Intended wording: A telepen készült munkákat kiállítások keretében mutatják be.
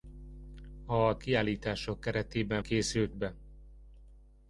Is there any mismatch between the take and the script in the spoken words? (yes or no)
yes